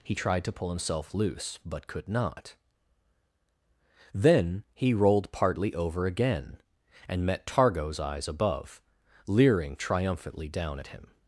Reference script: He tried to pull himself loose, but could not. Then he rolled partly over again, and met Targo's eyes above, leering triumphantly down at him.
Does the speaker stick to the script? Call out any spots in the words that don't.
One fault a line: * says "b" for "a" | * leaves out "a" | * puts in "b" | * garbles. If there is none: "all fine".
all fine